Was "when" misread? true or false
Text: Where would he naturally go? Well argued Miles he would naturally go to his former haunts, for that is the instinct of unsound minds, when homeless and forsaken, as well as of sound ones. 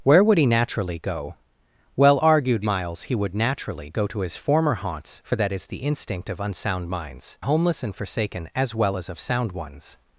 true